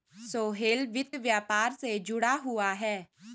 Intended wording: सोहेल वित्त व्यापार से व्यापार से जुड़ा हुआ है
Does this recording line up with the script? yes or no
no